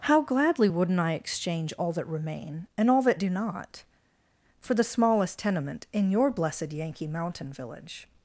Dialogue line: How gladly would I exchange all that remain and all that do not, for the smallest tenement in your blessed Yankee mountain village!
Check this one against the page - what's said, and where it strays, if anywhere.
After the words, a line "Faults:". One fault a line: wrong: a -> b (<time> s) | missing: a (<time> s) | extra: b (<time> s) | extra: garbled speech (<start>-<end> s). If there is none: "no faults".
How gladly wouldn't I exchange all that remain and all that do not, for the smallest tenement in your blessed Yankee mountain village!
Faults:
wrong: would -> wouldn't (0.7 s)